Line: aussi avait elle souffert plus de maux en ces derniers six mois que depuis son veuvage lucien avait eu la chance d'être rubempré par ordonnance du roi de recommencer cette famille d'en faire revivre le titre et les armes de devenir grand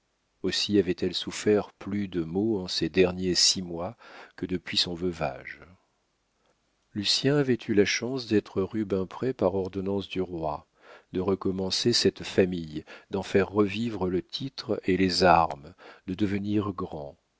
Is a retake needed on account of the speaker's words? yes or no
no